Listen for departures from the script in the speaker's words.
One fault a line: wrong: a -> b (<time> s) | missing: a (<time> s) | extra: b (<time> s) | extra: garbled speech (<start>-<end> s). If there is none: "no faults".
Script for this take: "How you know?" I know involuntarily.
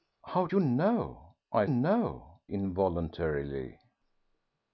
no faults